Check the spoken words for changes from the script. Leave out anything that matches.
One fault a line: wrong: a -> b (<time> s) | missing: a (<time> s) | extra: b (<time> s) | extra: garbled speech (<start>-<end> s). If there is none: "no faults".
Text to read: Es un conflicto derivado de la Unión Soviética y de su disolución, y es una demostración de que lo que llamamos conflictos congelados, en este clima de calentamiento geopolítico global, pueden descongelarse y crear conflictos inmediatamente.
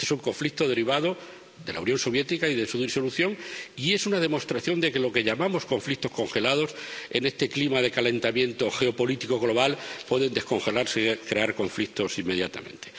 no faults